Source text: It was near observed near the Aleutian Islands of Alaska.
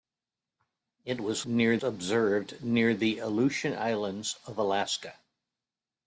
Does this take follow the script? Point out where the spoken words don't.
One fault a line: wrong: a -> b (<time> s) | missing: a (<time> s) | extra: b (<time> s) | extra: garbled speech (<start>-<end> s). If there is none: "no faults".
no faults